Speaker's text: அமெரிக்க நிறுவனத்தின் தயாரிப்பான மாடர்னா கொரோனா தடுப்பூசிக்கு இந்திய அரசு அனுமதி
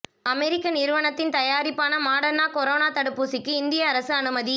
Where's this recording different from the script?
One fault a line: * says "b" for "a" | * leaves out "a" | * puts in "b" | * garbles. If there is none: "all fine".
all fine